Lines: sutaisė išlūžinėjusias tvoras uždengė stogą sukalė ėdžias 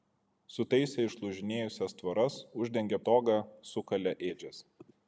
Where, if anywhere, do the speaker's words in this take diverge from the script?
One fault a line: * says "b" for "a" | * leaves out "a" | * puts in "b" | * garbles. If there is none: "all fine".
all fine